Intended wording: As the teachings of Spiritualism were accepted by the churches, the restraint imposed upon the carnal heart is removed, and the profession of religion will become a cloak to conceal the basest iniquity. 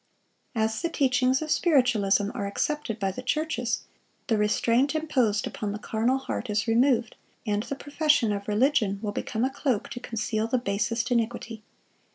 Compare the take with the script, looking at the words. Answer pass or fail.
fail